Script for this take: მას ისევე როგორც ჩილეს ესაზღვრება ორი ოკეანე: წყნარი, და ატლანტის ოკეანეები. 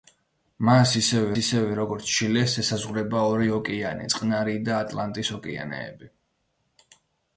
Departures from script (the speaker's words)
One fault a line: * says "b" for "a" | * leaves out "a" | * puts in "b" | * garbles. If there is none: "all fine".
* puts in "ისევე"